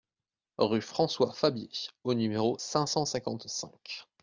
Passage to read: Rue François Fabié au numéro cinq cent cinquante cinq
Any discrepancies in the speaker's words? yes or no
no